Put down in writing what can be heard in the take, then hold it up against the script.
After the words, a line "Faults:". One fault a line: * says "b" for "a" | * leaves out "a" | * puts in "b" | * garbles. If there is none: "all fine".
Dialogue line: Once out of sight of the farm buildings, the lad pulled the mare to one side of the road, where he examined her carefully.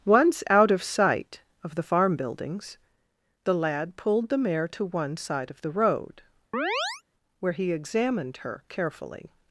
Once out of sight of the farm buildings, the lad pulled the mare to one side of the road, where he examined her carefully.
Faults:
all fine